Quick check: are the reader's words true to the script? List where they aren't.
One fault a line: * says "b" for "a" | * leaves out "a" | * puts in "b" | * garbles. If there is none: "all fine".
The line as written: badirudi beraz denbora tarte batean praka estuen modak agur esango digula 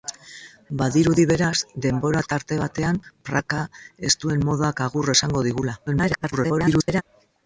* garbles